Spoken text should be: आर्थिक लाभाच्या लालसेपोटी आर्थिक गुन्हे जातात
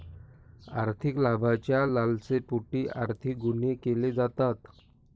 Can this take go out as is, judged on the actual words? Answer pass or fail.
fail